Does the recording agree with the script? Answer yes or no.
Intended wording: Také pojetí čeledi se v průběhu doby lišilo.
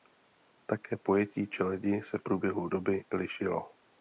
yes